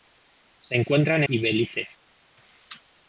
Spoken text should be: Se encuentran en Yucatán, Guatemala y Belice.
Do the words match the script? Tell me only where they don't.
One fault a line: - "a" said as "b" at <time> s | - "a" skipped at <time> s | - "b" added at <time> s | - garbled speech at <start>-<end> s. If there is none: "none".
- "en Yucatán Guatemala" skipped at 1.2 s